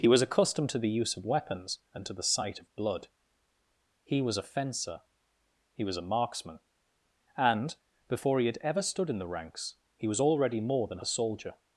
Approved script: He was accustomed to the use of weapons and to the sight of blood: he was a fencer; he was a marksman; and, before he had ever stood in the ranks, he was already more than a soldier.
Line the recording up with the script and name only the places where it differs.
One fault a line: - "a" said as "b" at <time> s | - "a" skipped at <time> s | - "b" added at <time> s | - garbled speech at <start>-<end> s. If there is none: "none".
none